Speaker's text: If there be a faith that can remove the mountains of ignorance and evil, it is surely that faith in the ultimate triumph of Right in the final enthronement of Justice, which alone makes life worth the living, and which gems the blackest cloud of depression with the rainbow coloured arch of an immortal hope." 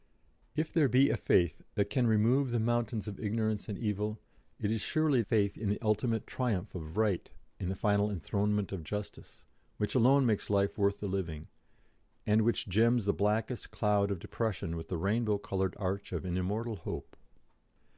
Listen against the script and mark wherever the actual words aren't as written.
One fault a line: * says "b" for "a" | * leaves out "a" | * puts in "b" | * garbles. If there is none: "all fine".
* leaves out "that"